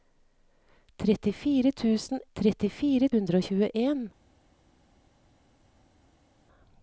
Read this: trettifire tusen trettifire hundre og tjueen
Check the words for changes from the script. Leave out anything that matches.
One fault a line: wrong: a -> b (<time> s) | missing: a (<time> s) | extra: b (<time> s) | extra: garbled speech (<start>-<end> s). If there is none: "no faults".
no faults